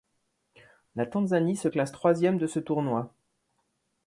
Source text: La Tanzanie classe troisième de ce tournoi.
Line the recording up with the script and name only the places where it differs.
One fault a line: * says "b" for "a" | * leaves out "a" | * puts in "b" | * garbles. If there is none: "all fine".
* puts in "se"